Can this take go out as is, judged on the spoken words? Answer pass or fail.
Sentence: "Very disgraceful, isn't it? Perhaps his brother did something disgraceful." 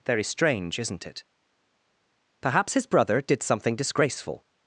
fail